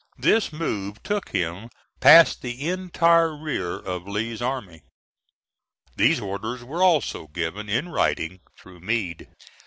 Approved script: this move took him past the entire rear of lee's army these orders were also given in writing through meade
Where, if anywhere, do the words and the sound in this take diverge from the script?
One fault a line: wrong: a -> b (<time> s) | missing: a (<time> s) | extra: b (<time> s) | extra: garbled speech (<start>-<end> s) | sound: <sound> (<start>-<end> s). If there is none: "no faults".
no faults